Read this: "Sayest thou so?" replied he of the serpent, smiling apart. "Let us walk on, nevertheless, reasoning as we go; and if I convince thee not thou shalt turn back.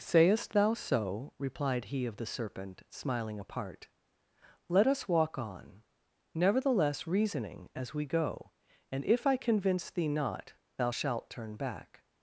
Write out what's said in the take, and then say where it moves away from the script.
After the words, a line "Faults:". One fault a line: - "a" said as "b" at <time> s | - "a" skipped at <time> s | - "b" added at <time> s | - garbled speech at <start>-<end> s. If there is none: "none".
"Sayest thou so?" replied he of the serpent, smiling apart. "Let us walk on, nevertheless, reasoning as we go; and if I convince thee not thou shalt turn back.
Faults:
none